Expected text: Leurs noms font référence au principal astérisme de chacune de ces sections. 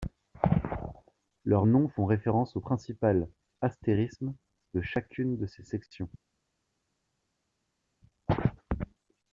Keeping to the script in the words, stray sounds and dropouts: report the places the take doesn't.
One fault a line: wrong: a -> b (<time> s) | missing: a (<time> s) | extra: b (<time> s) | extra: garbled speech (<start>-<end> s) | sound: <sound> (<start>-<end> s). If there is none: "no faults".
no faults